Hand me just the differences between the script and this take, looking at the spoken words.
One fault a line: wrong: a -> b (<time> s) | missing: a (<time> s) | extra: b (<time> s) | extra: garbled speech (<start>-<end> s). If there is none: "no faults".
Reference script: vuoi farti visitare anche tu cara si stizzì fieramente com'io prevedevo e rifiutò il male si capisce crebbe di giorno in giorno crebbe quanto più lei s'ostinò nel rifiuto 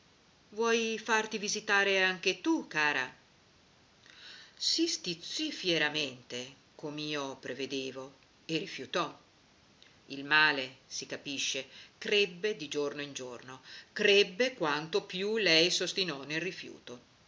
no faults